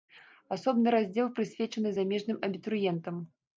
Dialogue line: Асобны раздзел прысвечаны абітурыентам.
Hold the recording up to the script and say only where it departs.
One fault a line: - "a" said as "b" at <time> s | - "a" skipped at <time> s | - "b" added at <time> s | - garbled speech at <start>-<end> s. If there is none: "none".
- "замежным" added at 2.0 s